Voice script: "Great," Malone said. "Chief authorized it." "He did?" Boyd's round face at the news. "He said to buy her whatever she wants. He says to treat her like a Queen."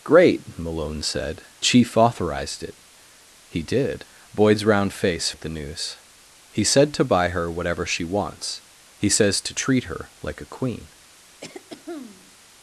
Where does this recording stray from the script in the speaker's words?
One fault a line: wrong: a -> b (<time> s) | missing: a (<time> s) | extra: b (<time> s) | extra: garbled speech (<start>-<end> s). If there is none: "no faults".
no faults